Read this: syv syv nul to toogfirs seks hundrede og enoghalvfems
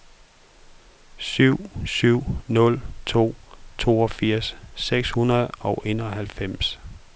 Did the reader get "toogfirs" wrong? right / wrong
right